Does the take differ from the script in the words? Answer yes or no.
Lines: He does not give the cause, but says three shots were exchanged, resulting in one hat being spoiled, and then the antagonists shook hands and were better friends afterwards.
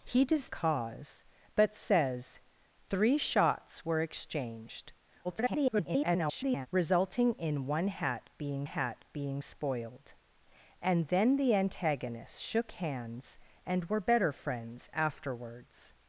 yes